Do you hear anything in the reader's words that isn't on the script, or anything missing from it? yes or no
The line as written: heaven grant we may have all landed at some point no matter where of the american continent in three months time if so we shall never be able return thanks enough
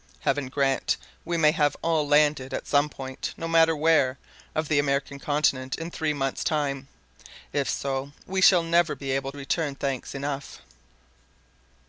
no